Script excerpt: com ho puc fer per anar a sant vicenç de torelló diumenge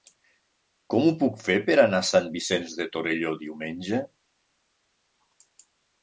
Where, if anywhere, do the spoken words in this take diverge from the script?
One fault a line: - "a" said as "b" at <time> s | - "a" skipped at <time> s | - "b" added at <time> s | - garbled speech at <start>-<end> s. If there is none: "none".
none